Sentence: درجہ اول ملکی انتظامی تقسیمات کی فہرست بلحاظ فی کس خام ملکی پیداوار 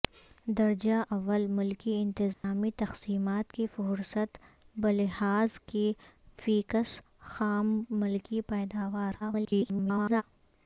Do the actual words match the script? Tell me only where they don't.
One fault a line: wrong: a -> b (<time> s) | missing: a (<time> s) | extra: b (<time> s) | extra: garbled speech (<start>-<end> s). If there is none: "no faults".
extra: garbled speech (9.2-10.2 s)